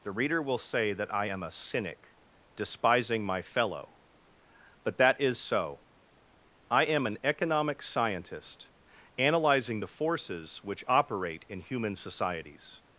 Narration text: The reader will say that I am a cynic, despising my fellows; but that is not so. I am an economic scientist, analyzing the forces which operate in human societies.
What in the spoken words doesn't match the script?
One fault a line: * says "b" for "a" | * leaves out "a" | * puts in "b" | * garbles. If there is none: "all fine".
* says "fellow" for "fellows"
* leaves out "not"